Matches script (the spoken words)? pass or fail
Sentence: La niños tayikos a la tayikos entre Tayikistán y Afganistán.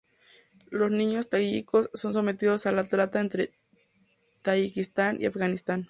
fail